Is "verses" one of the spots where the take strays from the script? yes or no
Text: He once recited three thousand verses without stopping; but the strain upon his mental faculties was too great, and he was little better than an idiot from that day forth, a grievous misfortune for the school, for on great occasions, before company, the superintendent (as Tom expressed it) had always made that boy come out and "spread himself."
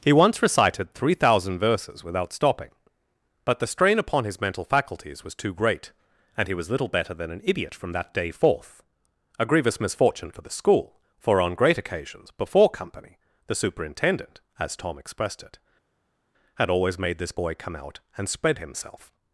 no